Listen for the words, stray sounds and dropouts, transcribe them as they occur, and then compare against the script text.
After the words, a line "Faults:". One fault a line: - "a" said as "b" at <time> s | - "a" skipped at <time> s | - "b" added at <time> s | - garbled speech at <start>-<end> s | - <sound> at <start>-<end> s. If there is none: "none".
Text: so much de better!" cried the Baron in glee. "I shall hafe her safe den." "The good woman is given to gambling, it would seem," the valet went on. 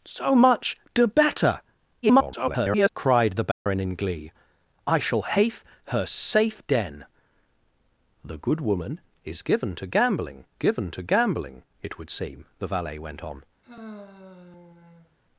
so much de better!" [garbled] cried the Baron in glee. "I shall hafe her safe den." "The good woman is given to gambling given to gambling, it would seem," the valet went on.
Faults:
- garbled speech at 2.0-2.9 s
- dropout at 3.5-3.7 s
- "given to gambling" added at 10.6 s
- sigh at 13.6-15.2 s